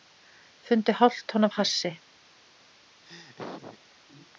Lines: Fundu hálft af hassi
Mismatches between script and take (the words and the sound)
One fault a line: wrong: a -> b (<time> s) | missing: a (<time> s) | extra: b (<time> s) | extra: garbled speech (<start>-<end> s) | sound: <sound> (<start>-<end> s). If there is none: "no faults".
extra: tonn (1.3 s)
sound: laugh (3.0-3.8 s)